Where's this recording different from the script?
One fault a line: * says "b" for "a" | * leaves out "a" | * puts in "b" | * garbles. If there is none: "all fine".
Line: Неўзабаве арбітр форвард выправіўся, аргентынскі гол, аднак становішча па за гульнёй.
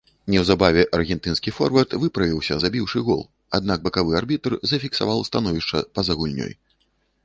* says "аргентынскі" for "арбітр"
* says "забіўшы" for "аргентынскі"
* puts in "бакавы арбітр зафіксаваў"